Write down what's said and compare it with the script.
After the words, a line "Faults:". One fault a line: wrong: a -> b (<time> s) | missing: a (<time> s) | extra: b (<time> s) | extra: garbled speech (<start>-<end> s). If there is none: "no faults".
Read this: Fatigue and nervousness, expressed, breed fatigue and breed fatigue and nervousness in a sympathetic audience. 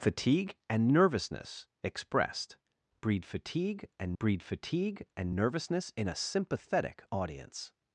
Fatigue and nervousness, expressed, breed fatigue and breed fatigue and nervousness in a sympathetic audience.
Faults:
no faults